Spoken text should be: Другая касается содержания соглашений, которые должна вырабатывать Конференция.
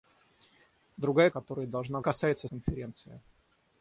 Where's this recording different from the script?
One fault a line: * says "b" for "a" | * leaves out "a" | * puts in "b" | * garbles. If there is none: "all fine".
* leaves out "касается содержания соглашений"
* says "касается" for "вырабатывать"